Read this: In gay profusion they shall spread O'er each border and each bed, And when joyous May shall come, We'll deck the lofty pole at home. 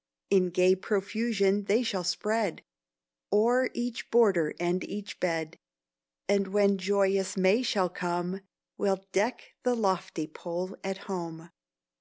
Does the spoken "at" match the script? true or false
true